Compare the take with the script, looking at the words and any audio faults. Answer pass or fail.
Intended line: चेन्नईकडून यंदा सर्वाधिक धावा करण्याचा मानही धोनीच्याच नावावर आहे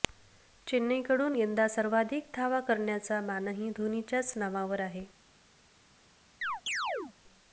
fail